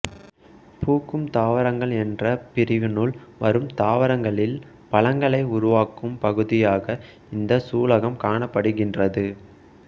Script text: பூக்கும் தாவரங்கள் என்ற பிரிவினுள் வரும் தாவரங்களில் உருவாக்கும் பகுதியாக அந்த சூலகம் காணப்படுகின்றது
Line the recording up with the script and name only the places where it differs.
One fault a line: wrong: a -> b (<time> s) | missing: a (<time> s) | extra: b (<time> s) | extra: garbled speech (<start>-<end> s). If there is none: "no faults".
extra: பழங்களை (4.9 s)
wrong: அந்த -> இந்த (7.3 s)